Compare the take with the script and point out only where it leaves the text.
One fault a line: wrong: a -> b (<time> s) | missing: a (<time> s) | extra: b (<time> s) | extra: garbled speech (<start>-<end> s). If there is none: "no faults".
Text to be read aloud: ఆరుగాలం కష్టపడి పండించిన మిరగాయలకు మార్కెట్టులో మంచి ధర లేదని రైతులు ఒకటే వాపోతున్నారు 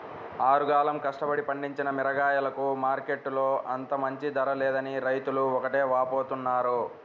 extra: అంత (3.7 s)